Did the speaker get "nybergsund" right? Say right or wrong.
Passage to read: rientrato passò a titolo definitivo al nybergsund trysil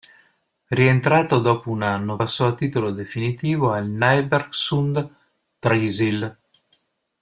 right